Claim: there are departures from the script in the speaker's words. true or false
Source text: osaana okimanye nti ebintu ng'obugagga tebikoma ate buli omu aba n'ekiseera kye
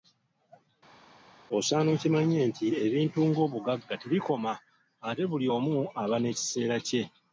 false